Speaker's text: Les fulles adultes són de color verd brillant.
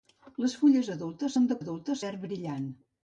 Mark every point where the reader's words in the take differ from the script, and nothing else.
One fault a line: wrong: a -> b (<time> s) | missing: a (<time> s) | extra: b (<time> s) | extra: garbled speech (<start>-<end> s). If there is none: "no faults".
wrong: color -> adultes (1.6 s)